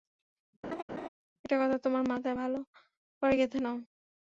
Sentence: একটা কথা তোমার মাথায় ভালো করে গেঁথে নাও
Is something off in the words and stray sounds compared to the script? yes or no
yes